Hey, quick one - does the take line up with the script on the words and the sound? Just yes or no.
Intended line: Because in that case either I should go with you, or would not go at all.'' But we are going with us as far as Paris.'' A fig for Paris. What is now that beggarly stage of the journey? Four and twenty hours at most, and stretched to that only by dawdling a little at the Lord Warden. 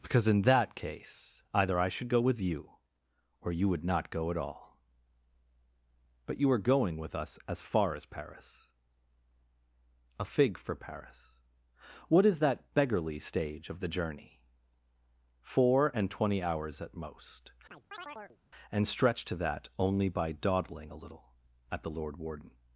no